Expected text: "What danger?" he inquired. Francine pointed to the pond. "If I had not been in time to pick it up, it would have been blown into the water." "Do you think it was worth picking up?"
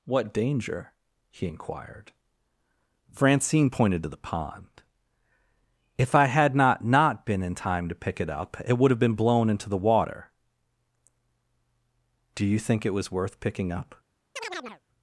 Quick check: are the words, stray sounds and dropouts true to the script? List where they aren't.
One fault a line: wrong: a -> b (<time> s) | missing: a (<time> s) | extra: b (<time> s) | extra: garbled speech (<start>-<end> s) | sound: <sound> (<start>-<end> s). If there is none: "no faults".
extra: not (6.8 s)
sound: chirp (14.4-14.8 s)